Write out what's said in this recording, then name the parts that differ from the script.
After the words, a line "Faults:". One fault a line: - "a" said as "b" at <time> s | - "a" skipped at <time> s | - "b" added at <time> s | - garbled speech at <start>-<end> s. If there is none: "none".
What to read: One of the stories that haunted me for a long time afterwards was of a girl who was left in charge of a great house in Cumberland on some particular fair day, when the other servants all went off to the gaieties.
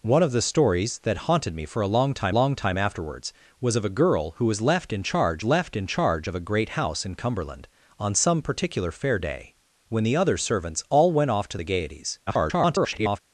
One of the stories that haunted me for a long time long time afterwards was of a girl who was left in charge left in charge of a great house in Cumberland on some particular fair day, when the other servants all went off to the gaieties. [garbled]
Faults:
- "long time" added at 2.3 s
- "left in charge" added at 5.4 s
- garbled speech at 12.3-13.2 s